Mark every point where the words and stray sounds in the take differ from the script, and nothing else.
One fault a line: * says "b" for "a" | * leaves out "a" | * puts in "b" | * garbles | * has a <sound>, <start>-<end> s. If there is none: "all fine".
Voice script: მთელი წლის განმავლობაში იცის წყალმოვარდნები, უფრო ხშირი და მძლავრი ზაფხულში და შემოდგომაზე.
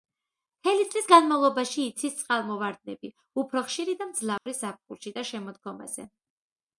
* has a dropout, 4.4-4.5 s